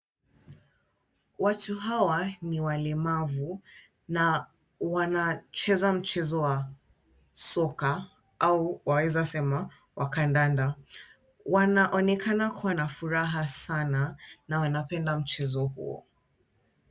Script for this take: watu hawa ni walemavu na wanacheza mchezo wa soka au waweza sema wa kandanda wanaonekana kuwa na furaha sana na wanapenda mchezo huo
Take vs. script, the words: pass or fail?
pass